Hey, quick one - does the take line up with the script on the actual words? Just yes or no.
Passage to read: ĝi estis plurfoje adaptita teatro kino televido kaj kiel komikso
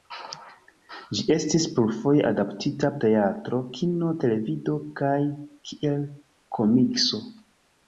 yes